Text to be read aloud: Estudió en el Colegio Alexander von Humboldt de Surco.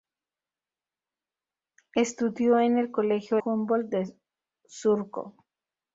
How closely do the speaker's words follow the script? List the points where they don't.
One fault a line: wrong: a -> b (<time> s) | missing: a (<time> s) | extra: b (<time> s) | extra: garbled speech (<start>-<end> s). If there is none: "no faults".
missing: Alexander von (3.4 s)